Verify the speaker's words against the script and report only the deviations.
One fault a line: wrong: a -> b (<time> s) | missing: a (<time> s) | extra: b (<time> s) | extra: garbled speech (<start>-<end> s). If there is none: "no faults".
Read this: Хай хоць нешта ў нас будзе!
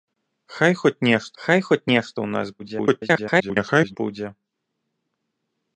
extra: хай хоць нешта (1.4 s)
extra: garbled speech (2.6-4.0 s)